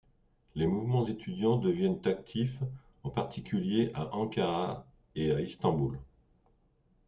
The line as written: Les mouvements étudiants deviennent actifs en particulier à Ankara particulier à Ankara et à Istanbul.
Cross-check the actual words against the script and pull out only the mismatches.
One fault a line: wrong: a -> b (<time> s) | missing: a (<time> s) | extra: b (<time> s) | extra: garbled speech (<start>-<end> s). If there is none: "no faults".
missing: particulier à Ankara (4.9 s)